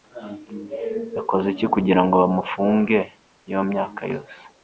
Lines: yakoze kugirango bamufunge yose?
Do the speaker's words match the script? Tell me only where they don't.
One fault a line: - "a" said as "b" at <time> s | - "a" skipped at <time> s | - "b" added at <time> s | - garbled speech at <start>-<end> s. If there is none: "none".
- "iki" added at 1.5 s
- "iyo myaka" added at 3.5 s